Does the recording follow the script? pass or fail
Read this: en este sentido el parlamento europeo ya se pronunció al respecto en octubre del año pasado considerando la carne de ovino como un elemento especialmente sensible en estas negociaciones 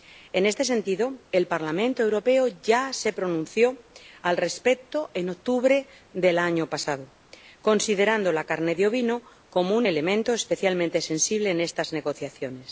pass